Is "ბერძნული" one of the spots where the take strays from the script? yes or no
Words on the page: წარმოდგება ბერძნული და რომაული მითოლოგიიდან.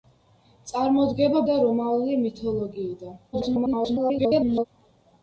yes